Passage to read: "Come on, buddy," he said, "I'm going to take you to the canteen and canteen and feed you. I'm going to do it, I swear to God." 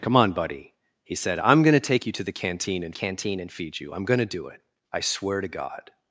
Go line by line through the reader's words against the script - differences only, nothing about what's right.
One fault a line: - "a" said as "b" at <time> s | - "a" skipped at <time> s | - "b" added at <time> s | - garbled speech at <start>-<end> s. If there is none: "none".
none